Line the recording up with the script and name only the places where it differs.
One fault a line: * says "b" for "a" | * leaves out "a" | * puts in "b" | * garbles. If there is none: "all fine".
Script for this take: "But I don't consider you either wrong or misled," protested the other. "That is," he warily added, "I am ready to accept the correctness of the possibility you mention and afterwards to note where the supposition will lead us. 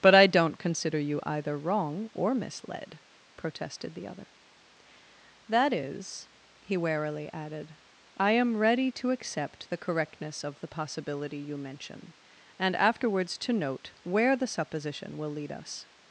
all fine